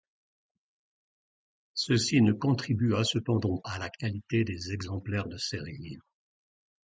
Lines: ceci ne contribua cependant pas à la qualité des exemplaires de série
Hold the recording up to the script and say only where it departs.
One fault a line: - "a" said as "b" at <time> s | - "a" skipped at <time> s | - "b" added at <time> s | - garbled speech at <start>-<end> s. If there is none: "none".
- "pas" skipped at 3.6 s